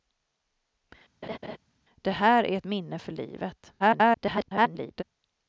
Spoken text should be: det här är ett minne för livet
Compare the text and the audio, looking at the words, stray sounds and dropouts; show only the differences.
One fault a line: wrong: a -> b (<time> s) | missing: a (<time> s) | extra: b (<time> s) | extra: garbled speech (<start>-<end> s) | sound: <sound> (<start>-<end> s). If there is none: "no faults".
sound: laugh (1.2-1.6 s)
extra: garbled speech (3.8-5.0 s)